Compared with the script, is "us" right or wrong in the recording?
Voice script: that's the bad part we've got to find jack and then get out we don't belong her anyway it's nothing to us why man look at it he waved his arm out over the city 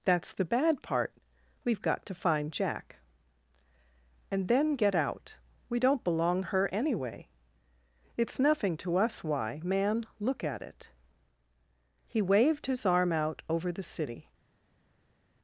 right